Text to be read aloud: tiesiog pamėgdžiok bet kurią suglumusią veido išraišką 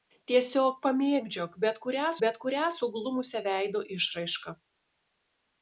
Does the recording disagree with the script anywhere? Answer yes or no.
yes